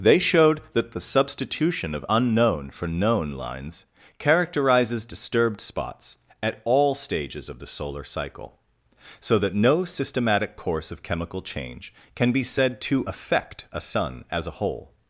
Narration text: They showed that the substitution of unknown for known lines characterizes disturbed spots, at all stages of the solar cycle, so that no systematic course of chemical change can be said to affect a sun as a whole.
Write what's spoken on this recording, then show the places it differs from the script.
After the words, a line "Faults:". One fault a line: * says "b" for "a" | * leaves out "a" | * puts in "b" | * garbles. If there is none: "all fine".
They showed that the substitution of unknown for known lines characterizes disturbed spots, at all stages of the solar cycle, so that no systematic course of chemical change can be said to affect a sun as a whole.
Faults:
all fine